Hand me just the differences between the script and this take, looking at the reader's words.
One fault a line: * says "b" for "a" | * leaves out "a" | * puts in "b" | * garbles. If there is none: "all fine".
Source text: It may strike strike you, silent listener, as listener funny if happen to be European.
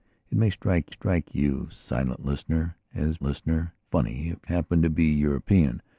all fine